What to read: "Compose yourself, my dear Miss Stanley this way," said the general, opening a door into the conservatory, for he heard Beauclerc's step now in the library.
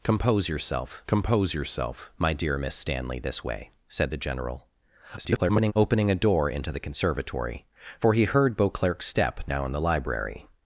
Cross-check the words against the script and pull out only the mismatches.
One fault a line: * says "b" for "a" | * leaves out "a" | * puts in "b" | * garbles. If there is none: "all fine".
* puts in "compose yourself"
* garbles